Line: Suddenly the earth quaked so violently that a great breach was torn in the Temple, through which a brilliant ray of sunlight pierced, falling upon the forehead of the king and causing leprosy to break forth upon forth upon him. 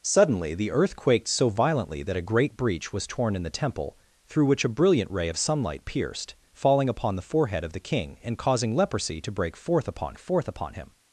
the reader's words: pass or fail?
pass